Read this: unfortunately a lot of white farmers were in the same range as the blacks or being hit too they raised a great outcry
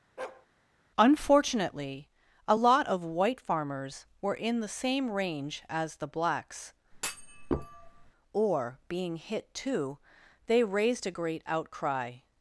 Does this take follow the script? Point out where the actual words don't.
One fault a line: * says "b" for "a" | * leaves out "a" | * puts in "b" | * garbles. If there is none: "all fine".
all fine